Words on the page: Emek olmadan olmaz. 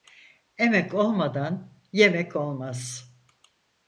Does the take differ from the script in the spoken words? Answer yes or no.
yes